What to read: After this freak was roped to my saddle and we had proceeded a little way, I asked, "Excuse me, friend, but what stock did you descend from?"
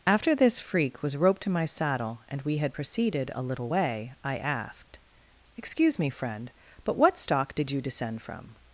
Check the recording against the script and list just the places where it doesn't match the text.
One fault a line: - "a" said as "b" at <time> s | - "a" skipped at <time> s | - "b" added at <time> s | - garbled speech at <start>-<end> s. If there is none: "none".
none